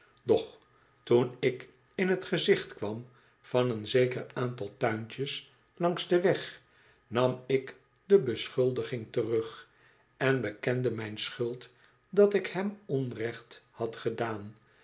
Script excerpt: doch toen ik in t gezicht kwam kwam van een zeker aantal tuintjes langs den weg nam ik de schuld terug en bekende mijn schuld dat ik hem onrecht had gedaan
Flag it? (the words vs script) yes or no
yes